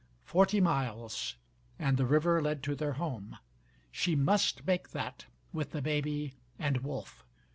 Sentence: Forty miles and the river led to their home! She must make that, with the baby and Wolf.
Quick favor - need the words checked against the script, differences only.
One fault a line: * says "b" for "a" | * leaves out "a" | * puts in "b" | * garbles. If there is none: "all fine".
all fine